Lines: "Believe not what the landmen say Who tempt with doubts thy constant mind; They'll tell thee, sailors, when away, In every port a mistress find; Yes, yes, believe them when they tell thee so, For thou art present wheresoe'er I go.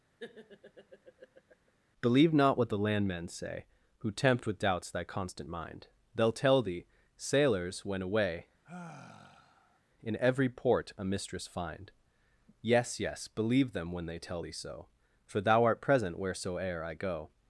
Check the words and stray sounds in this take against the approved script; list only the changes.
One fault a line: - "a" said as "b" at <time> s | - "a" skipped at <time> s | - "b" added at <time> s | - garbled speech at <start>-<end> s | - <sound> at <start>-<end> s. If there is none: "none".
- laugh at 0.2-1.7 s
- sigh at 8.6-9.8 s